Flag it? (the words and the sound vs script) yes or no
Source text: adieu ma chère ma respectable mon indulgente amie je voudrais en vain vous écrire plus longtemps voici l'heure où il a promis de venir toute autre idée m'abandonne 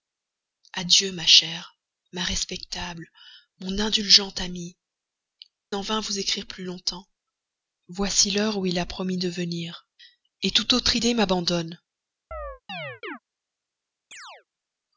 yes